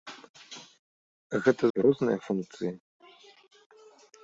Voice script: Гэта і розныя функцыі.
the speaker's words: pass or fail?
pass